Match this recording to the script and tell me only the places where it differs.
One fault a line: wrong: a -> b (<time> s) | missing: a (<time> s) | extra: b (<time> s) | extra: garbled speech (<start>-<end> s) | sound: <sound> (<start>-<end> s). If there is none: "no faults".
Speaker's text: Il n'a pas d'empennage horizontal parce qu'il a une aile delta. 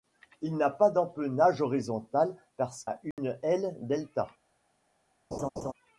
missing: qu'il (2.9 s)
sound: dropout (3.1-3.2 s)
sound: laugh (5.3-5.7 s)